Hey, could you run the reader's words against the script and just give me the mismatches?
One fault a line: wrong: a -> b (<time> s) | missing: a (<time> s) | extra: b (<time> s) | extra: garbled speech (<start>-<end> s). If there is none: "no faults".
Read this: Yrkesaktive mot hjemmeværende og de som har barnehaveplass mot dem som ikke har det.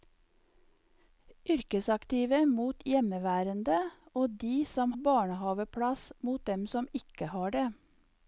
missing: har (4.9 s)